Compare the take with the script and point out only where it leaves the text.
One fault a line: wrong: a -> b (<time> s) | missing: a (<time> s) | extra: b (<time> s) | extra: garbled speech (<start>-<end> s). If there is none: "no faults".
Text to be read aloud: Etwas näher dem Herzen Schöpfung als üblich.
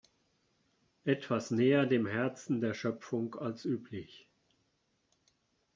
extra: der (2.6 s)